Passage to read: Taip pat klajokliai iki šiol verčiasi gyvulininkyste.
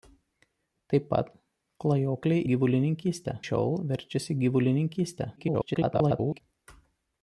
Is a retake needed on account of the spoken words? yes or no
yes